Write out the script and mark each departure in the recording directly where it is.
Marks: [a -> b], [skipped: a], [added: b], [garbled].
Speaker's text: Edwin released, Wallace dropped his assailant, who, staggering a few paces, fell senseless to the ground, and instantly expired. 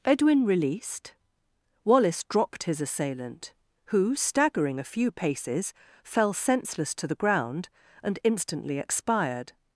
Edwin released, Wallace dropped his assailant, who, staggering a few paces, fell senseless to the ground, and instantly expired.